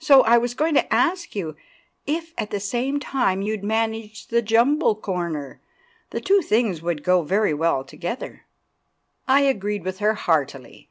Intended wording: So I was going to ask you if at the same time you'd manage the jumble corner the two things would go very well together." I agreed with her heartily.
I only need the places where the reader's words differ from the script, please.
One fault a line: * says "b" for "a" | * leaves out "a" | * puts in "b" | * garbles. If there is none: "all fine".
all fine